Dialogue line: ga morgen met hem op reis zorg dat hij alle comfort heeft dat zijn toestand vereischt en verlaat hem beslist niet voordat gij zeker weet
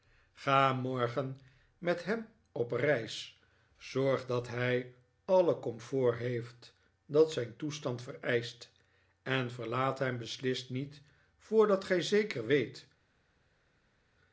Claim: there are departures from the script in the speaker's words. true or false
false